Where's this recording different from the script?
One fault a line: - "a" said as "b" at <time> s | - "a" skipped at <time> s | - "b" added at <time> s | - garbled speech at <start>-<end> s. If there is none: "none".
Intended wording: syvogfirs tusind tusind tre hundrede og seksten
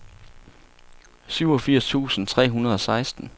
- "tusind" skipped at 2.3 s